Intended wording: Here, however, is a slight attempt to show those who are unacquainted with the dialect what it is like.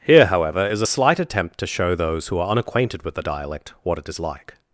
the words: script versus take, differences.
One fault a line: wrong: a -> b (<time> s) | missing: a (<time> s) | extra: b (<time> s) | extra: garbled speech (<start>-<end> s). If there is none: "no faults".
no faults